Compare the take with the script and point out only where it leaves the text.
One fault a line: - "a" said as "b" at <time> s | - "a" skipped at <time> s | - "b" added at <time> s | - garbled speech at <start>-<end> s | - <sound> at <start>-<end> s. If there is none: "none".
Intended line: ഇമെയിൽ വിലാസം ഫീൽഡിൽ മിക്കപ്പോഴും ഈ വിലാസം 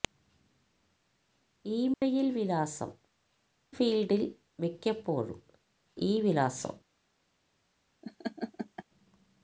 - dropout at 1.9-2.0 s
- laugh at 8.0-8.8 s